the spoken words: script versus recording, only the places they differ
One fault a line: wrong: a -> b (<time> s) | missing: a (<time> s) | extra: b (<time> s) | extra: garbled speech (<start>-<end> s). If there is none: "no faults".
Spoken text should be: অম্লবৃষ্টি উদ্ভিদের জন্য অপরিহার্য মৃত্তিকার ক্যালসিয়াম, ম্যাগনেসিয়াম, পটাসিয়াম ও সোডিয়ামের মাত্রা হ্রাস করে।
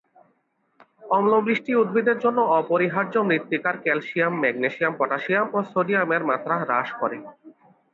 no faults